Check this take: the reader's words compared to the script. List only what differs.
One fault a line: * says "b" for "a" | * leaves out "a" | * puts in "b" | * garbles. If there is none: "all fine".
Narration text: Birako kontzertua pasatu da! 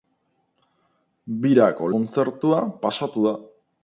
all fine